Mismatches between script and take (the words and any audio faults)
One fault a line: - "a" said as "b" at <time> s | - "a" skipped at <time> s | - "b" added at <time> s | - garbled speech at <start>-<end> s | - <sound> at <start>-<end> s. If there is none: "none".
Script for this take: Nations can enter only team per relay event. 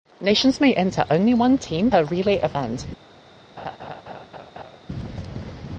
- "can" said as "may" at 0.6 s
- "one" added at 1.3 s
- laugh at 3.6-4.8 s